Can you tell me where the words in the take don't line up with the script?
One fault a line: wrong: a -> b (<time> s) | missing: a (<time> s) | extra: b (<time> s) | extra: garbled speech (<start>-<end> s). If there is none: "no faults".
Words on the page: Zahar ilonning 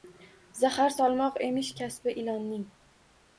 extra: solmoq emish kasbi (0.9 s)